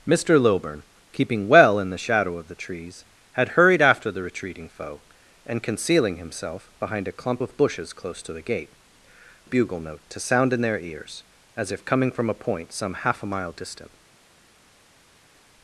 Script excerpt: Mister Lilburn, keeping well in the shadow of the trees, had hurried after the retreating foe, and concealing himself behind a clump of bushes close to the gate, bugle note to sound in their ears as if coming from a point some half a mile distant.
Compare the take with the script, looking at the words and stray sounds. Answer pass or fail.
pass